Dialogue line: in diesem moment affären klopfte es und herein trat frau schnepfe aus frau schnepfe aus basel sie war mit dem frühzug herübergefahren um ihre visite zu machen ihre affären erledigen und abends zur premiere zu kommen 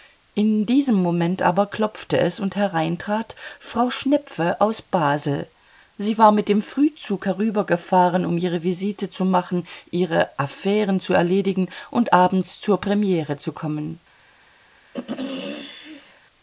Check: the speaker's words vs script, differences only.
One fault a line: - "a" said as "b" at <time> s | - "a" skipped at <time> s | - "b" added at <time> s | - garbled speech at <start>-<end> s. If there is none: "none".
- "affären" said as "aber" at 1.4 s
- "frau schnepfe aus" skipped at 4.8 s
- "zu" added at 11.0 s